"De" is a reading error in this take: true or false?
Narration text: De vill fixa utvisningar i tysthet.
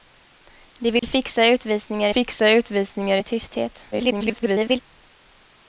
false